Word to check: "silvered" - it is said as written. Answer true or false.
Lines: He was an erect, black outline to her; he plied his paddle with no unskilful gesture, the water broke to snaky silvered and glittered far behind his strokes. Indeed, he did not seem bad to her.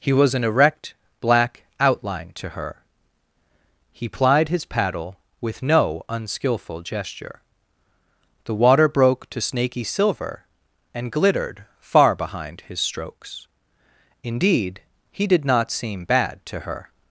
false